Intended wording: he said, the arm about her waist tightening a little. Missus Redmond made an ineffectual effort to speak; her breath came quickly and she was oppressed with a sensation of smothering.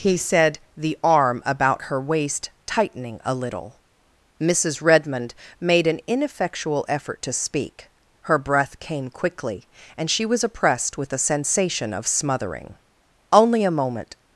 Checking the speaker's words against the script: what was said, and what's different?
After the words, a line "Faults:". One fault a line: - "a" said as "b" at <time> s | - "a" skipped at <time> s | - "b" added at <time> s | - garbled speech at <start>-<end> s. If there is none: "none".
he said, the arm about her waist tightening a little. Missus Redmond made an ineffectual effort to speak; her breath came quickly and she was oppressed with a sensation of smothering. Only a moment
Faults:
- "Only a moment" added at 13.3 s